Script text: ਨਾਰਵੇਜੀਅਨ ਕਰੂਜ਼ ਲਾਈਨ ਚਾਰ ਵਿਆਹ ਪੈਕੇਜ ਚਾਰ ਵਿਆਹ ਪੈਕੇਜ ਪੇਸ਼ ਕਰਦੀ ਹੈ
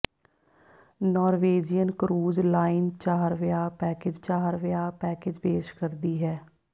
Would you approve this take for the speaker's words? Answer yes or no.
yes